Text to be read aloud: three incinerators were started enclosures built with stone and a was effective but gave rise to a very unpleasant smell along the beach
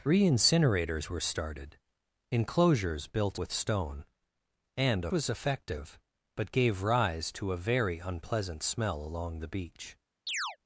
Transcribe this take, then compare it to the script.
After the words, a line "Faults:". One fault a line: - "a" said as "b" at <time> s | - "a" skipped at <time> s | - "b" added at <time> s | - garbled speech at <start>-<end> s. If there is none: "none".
three incinerators were started enclosures built with stone and a was effective but gave rise to a very unpleasant smell along the beach
Faults:
none